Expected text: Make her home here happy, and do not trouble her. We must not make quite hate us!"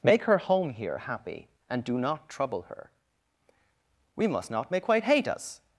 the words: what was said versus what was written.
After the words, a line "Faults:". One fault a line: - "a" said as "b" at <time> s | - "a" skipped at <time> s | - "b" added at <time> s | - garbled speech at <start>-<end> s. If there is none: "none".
Make her home here happy, and do not trouble her. We must not make quite hate us!"
Faults:
none